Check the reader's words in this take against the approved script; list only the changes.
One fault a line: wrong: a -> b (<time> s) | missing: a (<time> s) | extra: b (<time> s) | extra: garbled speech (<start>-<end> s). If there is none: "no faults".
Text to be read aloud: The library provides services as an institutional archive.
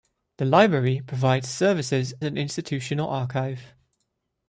missing: as (2.1 s)